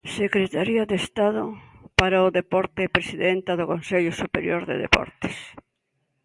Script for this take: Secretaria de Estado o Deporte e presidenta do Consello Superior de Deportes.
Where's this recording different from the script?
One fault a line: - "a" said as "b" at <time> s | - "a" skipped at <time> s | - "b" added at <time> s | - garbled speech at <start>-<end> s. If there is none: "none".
- "para" added at 1.9 s